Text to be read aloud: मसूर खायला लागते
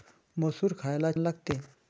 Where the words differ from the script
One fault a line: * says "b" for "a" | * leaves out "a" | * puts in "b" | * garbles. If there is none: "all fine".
all fine